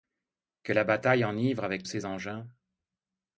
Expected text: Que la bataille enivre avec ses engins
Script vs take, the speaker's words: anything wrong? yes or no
no